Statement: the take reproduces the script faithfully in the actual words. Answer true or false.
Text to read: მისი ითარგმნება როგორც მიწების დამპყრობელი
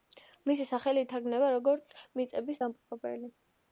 false